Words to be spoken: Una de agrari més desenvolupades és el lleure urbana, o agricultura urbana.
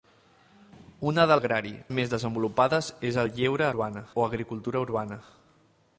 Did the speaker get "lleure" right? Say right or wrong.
right